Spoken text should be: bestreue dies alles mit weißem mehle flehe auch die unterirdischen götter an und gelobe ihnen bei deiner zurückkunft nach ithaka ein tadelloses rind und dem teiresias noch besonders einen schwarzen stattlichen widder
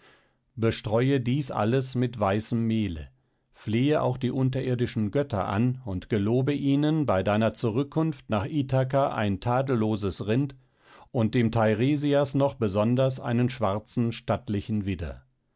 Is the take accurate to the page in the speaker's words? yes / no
yes